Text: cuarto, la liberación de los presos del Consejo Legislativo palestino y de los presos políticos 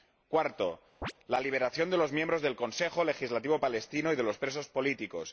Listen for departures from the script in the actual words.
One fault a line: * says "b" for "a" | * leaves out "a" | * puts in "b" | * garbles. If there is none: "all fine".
* says "miembros" for "presos"